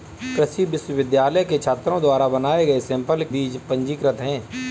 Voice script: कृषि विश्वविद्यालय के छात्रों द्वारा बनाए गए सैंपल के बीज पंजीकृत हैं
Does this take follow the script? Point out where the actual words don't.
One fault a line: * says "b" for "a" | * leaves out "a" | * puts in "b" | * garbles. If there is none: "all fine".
* leaves out "के"